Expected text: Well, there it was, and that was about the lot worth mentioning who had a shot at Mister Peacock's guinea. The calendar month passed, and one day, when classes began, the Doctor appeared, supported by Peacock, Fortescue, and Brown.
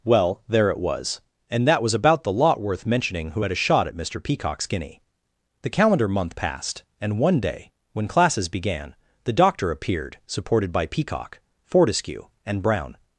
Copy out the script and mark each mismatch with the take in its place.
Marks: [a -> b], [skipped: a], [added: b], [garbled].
Well, there it was, and that was about the lot worth mentioning who had a shot at Mister Peacock's guinea. The calendar month passed, and one day, when classes began, the Doctor appeared, supported by Peacock, Fortescue, and Brown.